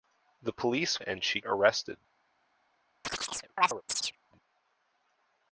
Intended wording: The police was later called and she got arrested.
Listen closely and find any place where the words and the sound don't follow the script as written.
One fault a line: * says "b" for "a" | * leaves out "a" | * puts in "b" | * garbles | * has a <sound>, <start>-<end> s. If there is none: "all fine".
* leaves out "was later called"
* leaves out "got"
* has a chirp, 3.0-4.2 s